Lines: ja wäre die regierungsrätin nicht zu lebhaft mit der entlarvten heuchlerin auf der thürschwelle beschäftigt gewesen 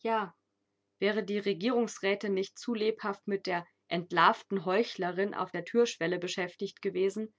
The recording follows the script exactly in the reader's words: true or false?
true